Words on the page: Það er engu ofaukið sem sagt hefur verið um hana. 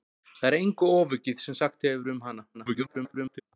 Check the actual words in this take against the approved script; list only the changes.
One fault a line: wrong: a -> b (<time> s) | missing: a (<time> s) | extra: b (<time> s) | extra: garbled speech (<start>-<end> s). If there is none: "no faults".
extra: garbled speech (2.5-3.4 s)